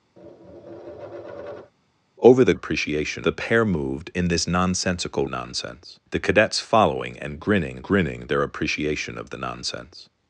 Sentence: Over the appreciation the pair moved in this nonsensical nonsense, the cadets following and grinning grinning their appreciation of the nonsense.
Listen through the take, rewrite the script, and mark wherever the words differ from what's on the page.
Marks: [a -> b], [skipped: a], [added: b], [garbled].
Over the appreciation the pair moved in this nonsensical nonsense, the cadets following and grinning grinning their appreciation of the nonsense.